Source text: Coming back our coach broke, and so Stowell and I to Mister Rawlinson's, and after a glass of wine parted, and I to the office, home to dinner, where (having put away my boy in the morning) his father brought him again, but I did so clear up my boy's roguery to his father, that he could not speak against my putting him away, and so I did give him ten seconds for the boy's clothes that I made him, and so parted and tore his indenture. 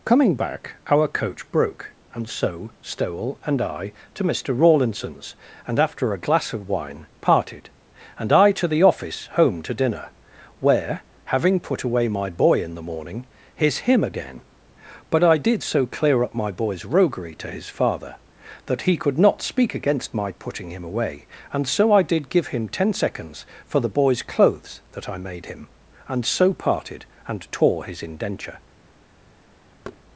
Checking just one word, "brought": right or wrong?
wrong